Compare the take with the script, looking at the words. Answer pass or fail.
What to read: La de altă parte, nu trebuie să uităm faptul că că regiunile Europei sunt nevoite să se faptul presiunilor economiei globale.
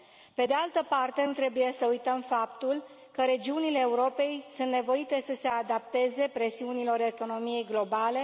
fail